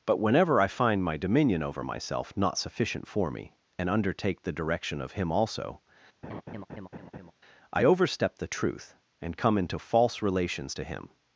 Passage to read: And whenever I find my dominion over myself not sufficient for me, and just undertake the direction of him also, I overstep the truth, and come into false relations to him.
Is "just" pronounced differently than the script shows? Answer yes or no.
yes